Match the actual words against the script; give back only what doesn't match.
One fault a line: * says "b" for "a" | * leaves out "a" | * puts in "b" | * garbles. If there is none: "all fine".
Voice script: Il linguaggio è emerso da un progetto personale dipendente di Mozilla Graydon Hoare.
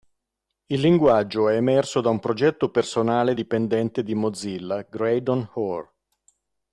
all fine